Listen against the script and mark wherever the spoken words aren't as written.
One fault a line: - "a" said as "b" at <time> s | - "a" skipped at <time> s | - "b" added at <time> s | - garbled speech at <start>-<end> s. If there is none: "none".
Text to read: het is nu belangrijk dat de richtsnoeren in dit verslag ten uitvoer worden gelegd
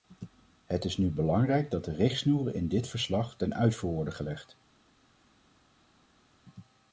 none